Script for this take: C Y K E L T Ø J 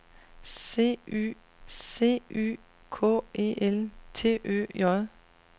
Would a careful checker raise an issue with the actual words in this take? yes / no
yes